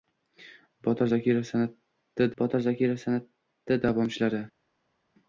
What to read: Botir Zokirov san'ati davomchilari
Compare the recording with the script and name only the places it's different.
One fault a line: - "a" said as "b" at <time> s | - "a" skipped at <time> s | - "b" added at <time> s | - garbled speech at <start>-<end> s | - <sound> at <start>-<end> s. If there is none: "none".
- "botir Zokirov san'ati" added at 2.4 s